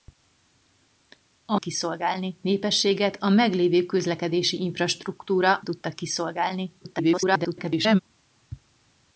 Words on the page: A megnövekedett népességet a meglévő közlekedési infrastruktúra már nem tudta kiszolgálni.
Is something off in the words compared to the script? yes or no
yes